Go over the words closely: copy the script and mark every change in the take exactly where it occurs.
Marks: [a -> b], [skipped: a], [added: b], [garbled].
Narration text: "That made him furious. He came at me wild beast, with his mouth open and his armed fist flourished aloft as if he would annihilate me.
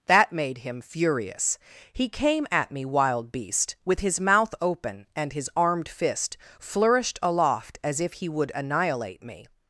"That made him furious. He came at me wild beast, with his mouth open and his armed fist flourished aloft as if he would annihilate me.